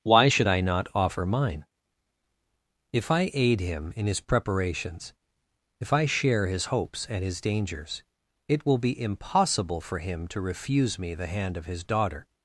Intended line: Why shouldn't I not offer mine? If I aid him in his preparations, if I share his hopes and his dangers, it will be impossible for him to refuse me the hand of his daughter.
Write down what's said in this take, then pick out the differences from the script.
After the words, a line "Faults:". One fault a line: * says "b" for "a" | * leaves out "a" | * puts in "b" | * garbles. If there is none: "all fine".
Why should I not offer mine? If I aid him in his preparations, if I share his hopes and his dangers, it will be impossible for him to refuse me the hand of his daughter.
Faults:
* says "should" for "shouldn't"